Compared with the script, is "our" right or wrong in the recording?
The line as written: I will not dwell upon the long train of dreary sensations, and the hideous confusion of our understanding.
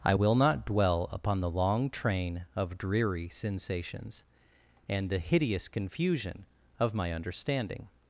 wrong